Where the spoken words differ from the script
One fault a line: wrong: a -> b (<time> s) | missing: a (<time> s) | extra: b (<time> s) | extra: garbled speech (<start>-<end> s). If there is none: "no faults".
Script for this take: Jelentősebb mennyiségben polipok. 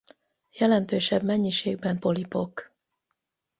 no faults